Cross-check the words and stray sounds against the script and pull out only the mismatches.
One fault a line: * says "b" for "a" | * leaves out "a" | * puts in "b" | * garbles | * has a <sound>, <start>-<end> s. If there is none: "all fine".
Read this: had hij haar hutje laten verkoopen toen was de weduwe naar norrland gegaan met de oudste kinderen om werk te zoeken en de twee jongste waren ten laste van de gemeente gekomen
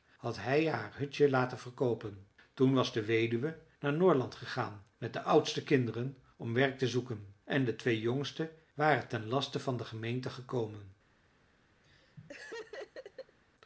* has a laugh, 11.8-13.4 s